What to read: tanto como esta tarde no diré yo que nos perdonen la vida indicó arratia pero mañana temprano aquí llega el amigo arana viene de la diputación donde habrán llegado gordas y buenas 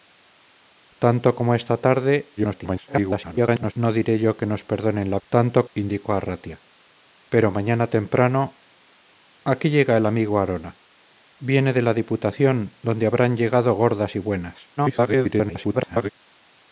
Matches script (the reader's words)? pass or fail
fail